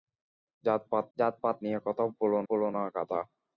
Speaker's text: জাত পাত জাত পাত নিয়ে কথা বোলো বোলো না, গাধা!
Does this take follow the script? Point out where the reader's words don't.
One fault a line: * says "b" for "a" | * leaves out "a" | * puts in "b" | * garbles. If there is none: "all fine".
all fine